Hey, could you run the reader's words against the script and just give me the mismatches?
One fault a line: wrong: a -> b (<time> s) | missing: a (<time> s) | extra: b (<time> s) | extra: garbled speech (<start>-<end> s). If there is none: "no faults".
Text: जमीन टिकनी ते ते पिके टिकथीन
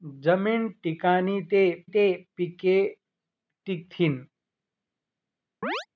no faults